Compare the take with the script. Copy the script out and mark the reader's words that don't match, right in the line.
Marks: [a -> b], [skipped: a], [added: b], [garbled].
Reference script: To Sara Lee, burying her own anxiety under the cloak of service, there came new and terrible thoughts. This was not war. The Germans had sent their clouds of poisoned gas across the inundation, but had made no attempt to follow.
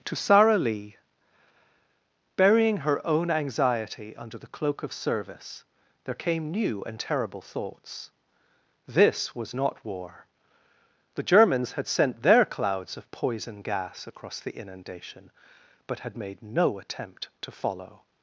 To Sara Lee, burying her own anxiety under the cloak of service, there came new and terrible thoughts. This was not war. The Germans had sent their clouds of [poisoned -> poison] gas across the inundation, but had made no attempt to follow.